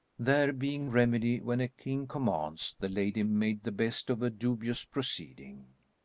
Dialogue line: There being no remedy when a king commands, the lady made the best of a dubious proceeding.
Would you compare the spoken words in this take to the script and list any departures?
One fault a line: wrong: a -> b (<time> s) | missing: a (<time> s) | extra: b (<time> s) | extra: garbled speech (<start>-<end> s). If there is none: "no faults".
missing: no (0.9 s)